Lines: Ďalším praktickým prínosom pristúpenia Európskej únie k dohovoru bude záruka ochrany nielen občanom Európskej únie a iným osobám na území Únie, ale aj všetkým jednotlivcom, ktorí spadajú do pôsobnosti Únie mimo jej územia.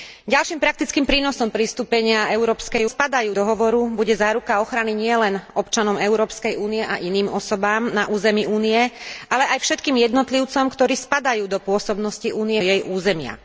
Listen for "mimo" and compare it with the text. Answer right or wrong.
wrong